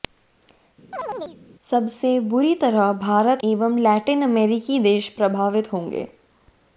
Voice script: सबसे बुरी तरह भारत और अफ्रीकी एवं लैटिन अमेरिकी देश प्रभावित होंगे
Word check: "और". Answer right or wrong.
wrong